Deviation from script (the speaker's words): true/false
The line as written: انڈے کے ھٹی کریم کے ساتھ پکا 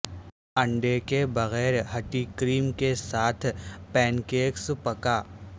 true